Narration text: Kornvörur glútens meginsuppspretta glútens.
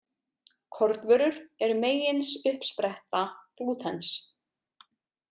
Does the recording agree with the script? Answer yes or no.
no